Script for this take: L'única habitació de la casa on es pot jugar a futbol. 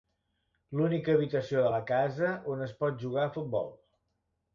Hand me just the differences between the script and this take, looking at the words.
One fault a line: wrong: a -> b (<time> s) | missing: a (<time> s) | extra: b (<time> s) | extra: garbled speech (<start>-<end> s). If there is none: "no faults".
no faults